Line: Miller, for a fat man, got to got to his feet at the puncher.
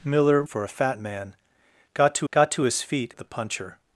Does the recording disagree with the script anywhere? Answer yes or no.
no